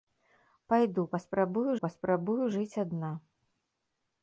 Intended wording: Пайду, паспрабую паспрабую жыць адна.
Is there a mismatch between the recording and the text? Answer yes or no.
no